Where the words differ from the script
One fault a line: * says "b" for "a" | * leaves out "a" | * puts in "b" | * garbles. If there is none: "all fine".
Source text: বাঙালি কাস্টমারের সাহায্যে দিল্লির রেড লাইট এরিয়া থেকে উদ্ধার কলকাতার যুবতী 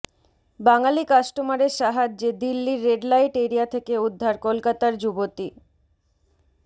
all fine